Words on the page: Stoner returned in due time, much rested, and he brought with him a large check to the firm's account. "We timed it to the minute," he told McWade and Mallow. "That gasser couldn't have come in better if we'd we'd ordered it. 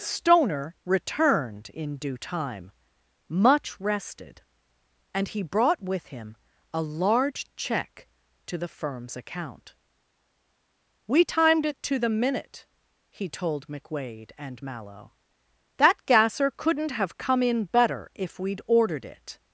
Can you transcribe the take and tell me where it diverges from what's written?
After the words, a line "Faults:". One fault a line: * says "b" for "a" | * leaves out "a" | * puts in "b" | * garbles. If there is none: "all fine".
Stoner returned in due time, much rested, and he brought with him a large check to the firm's account. "We timed it to the minute," he told McWade and Mallow. "That gasser couldn't have come in better if we'd ordered it.
Faults:
* leaves out "we'd"